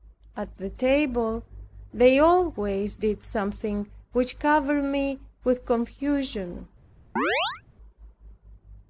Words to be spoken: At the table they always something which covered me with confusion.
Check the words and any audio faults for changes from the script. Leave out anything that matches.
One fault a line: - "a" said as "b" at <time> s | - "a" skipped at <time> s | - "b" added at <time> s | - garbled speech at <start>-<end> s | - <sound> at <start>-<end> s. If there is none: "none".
- "did" added at 2.9 s
- chirp at 7.2-7.6 s